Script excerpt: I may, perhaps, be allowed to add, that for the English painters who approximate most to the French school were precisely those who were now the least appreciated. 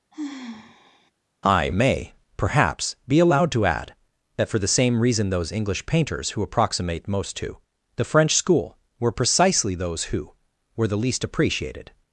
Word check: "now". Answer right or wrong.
wrong